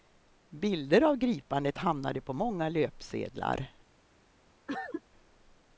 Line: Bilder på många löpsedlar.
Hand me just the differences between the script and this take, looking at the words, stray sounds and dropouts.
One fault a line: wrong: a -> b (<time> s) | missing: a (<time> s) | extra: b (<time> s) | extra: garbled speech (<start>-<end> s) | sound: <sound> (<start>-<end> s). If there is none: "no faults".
extra: av gripandet hamnade (1.0 s)
sound: cough (4.7-5.0 s)